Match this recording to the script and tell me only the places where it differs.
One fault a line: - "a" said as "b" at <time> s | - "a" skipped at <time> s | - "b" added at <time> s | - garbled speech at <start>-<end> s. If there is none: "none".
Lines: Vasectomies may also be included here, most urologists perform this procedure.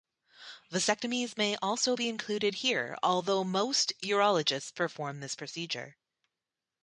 - "although" added at 3.0 s